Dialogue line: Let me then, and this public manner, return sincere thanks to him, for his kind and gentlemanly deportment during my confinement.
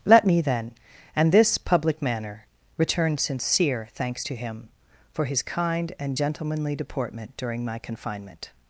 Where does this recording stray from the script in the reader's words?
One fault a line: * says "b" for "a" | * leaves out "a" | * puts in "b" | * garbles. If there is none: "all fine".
all fine